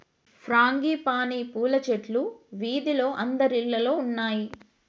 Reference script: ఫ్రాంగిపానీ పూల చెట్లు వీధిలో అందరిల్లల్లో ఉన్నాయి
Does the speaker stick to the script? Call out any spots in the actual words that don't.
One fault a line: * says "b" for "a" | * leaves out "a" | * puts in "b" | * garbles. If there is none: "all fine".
all fine